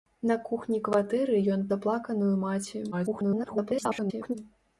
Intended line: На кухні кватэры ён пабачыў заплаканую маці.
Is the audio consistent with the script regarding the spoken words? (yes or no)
no